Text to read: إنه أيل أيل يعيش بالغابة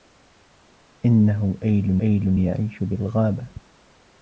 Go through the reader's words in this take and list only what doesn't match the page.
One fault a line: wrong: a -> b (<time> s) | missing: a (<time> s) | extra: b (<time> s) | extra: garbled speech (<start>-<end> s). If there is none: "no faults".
no faults